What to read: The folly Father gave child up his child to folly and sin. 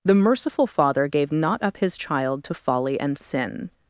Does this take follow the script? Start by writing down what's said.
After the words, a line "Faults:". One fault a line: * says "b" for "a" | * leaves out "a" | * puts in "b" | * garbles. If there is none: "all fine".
The merciful Father gave not up his child to folly and sin.
Faults:
* says "merciful" for "folly"
* says "not" for "child"